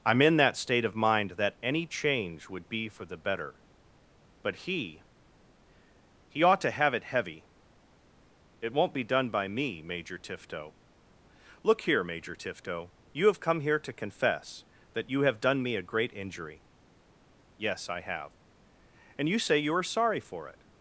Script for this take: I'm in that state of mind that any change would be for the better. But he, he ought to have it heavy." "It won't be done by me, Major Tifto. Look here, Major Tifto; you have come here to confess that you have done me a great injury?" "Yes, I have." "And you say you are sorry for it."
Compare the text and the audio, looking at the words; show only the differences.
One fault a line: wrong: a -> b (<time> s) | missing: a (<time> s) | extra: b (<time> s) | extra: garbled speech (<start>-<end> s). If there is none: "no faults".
no faults